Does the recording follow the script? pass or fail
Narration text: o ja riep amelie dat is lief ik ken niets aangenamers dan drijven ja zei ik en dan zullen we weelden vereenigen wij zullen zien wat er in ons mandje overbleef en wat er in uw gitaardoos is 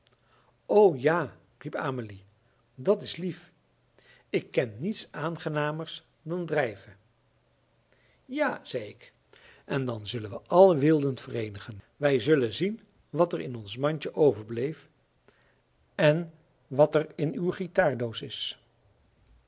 fail